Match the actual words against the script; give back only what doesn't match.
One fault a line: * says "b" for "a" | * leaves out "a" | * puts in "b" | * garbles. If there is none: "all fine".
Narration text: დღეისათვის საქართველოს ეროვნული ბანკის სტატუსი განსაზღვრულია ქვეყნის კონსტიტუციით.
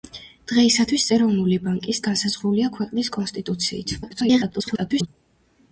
* leaves out "საქართველოს"
* leaves out "სტატუსი"
* garbles